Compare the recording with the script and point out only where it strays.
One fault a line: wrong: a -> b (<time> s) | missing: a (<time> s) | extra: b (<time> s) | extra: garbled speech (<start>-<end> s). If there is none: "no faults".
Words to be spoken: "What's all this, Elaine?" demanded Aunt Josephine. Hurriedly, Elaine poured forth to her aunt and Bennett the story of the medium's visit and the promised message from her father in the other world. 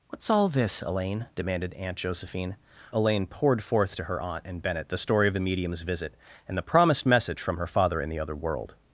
missing: Hurriedly (2.6 s)